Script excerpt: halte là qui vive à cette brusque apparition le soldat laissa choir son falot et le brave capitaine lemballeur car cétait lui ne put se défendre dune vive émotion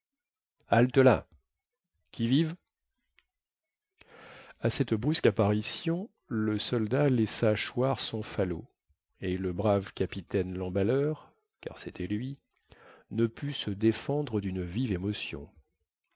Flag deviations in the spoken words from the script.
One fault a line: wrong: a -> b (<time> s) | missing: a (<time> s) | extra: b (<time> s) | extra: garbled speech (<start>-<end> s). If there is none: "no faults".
no faults